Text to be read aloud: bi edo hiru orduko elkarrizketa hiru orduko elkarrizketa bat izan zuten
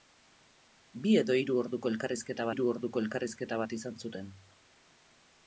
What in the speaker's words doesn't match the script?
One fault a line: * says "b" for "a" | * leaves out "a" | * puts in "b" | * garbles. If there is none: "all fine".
all fine